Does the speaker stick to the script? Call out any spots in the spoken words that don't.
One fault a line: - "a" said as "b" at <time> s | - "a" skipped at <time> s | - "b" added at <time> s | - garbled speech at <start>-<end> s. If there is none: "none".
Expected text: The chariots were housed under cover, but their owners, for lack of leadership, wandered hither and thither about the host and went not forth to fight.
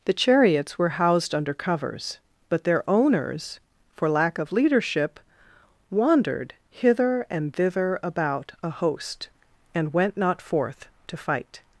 - "cover" said as "covers" at 1.5 s
- "the" said as "a" at 8.6 s